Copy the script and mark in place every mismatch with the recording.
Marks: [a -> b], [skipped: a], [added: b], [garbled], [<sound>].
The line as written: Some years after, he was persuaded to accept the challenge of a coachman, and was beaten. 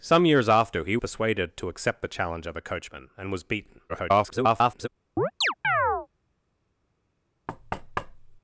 Some years after, he [skipped: was] persuaded to accept the challenge of a coachman, and was beaten. [garbled] [chirp] [thud]